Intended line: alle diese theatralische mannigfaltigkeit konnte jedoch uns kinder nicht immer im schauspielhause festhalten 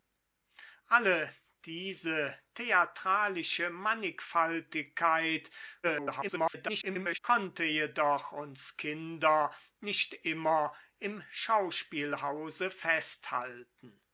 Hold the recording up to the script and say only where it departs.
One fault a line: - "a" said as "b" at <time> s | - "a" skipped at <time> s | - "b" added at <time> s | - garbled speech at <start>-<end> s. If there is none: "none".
- garbled speech at 5.8-7.2 s